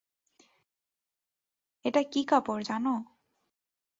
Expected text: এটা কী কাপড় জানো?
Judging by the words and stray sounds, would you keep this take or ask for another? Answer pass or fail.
pass